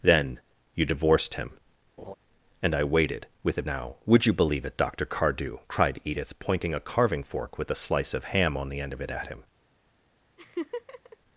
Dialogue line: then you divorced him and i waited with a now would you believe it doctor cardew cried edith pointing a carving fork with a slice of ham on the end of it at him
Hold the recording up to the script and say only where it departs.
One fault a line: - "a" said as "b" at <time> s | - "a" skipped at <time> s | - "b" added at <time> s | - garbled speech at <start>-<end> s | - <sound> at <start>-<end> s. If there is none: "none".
- laugh at 2.0-2.1 s
- laugh at 10.4-11.2 s